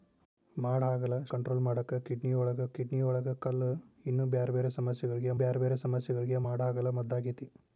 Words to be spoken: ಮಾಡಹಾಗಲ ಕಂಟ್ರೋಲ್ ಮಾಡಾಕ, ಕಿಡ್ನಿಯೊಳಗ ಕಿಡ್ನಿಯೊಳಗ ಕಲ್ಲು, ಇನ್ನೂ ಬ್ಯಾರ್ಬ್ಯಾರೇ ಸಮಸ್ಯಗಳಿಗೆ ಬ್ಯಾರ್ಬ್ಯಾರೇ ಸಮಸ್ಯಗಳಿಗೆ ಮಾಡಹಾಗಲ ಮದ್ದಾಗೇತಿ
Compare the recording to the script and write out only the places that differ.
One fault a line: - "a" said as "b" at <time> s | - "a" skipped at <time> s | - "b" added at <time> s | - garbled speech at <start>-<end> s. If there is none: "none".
none